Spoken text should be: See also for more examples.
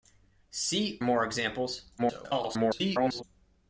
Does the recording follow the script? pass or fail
fail